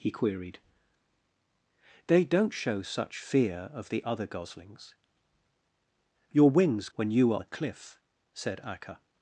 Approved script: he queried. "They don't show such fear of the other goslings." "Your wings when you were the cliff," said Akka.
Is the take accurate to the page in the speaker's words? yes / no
yes